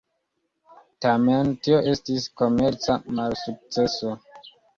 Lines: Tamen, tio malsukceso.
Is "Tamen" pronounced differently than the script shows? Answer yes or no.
no